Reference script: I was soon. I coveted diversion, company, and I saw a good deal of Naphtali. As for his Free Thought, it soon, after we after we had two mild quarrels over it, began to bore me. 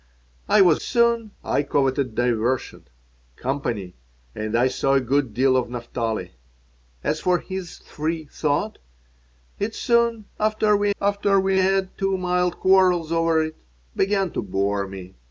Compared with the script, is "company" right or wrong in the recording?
right